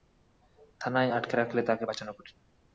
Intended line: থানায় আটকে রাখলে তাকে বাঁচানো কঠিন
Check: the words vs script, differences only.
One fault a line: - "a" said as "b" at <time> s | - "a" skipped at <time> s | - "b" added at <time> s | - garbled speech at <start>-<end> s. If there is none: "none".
none